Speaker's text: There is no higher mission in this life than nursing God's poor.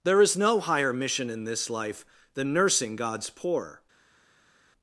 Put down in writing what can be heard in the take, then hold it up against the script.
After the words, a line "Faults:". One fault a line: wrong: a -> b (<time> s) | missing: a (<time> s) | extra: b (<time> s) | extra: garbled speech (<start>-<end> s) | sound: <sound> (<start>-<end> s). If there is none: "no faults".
There is no higher mission in this life than nursing God's poor.
Faults:
no faults